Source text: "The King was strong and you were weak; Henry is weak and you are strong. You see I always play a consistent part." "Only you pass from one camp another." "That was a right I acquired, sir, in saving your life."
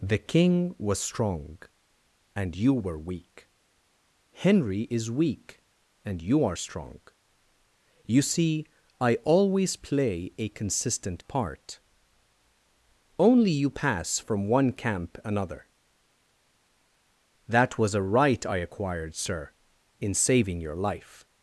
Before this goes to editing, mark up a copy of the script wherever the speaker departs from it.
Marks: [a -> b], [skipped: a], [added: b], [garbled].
"The King was strong and you were weak; Henry is weak and you are strong. You see I always play a consistent part." "Only you pass from one camp another." "That was a right I acquired, sir, in saving your life."